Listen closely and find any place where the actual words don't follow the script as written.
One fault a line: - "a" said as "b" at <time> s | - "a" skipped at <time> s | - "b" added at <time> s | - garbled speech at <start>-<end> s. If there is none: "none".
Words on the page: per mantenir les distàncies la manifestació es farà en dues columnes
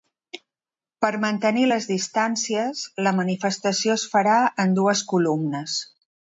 none